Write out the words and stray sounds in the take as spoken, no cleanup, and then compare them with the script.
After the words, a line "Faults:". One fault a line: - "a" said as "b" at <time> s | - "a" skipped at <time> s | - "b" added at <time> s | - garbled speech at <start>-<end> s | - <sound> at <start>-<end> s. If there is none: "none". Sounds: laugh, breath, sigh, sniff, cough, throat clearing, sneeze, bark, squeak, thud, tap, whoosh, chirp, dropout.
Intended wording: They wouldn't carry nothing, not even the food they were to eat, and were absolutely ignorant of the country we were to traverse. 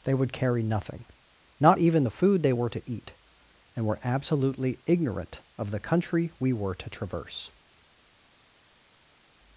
They would carry nothing, not even the food they were to eat, and were absolutely ignorant of the country we were to traverse.
Faults:
- "wouldn't" said as "would" at 0.1 s